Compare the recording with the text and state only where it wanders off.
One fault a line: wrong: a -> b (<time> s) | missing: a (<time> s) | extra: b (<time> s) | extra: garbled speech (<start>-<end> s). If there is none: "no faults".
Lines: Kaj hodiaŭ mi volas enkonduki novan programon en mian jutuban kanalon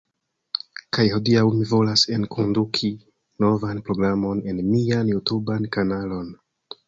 no faults